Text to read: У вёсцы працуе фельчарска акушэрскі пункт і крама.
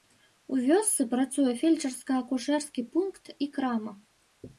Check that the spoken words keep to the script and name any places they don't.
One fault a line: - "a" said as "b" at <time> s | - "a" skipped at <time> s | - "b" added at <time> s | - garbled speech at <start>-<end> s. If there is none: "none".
none